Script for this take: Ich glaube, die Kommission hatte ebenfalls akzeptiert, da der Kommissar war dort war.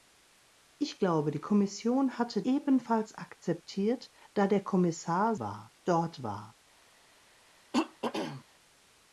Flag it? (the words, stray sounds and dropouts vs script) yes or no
yes